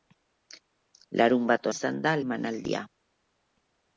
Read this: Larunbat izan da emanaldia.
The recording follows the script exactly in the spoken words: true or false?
true